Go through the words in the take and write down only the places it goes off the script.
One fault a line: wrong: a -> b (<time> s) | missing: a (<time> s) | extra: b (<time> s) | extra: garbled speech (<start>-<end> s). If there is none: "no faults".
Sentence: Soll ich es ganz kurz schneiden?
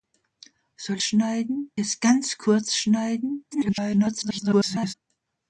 wrong: ich -> schneiden (1.0 s)
extra: garbled speech (3.5-4.9 s)